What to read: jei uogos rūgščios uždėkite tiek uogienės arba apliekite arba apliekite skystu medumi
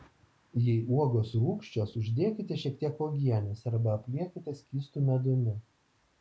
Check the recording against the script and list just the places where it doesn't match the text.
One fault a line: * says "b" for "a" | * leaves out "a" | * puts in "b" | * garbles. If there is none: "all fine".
* puts in "šiek"
* leaves out "arba apliekite"